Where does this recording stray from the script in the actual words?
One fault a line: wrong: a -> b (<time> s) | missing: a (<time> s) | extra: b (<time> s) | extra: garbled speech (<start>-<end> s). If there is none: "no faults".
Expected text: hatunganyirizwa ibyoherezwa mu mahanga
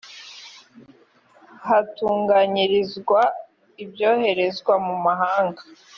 no faults